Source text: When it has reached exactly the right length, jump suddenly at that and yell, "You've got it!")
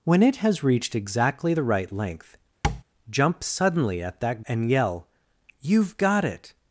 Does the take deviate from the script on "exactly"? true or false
false